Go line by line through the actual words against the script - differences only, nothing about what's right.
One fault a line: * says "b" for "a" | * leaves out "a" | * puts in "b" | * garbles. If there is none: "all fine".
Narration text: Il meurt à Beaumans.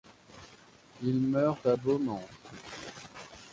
all fine